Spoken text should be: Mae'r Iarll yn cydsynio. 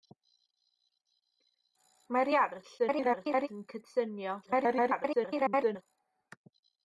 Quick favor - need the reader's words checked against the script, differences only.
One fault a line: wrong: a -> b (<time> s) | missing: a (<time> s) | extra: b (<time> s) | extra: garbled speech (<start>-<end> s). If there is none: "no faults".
extra: garbled speech (2.8-3.5 s)
extra: garbled speech (4.4-5.8 s)